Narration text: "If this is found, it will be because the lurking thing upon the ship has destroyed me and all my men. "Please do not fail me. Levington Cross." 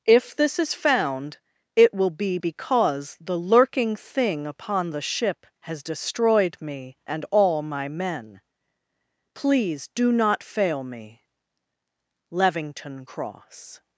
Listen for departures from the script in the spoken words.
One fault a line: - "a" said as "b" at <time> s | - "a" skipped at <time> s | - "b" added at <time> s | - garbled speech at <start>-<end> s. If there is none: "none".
none